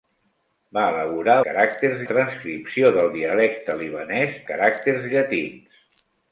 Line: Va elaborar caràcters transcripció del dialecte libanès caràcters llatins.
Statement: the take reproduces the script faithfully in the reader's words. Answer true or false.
true